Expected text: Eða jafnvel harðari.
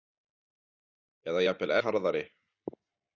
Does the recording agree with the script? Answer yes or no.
yes